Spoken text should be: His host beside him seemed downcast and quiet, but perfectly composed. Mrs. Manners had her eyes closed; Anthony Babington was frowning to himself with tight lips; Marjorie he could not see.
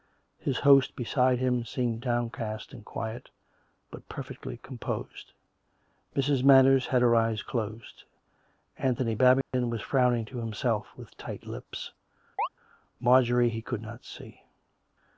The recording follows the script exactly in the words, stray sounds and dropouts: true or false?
false